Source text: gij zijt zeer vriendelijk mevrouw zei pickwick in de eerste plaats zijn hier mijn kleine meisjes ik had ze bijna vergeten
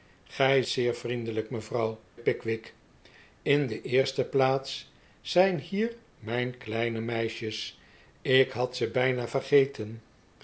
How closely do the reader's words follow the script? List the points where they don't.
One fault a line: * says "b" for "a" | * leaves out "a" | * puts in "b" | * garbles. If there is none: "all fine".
* leaves out "zijt"
* leaves out "zei"